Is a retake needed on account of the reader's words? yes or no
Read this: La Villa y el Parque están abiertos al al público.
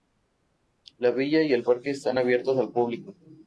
yes